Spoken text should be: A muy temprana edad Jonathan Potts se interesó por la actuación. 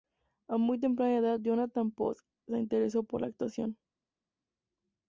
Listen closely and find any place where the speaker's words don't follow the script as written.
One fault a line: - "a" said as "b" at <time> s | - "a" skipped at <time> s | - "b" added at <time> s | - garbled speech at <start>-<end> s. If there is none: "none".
none